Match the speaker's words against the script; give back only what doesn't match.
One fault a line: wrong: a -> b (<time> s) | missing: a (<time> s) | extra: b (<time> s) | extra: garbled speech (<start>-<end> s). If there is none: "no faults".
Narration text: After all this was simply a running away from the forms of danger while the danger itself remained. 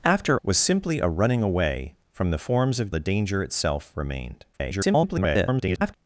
missing: all this (0.4 s)
missing: danger while (2.9 s)
extra: garbled speech (4.5-5.9 s)